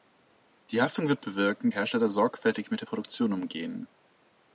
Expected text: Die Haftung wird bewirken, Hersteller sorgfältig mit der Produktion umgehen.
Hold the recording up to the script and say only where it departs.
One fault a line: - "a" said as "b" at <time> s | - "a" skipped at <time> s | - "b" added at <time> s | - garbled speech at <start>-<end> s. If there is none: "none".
none